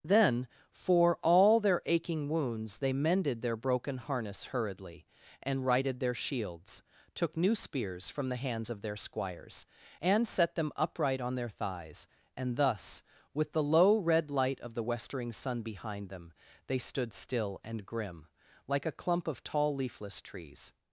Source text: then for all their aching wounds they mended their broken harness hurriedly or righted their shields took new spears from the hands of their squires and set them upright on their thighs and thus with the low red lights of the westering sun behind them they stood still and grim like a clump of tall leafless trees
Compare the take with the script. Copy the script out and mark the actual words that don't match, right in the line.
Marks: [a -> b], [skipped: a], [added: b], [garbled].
then for all their aching wounds they mended their broken harness hurriedly [or -> and] righted their shields took new spears from the hands of their squires and set them upright on their thighs and thus with the low red [lights -> light] of the westering sun behind them they stood still and grim like a clump of tall leafless trees